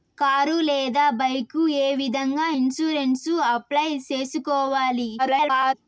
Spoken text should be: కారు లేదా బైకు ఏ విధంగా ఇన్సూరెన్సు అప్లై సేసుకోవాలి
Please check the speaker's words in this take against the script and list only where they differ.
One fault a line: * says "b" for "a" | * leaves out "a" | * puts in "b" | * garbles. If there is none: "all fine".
* garbles